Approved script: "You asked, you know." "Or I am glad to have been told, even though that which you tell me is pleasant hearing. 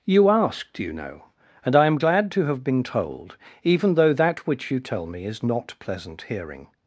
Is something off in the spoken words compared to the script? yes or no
yes